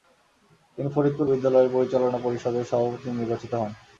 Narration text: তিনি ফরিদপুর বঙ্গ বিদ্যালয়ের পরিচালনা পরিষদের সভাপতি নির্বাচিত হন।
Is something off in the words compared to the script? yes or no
yes